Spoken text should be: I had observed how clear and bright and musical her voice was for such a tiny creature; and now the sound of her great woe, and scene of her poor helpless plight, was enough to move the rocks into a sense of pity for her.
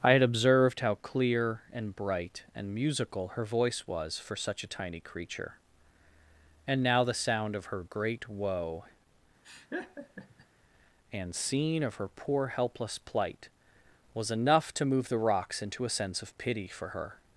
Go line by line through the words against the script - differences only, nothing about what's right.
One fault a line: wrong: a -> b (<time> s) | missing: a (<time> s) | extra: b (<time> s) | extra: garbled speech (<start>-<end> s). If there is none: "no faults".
no faults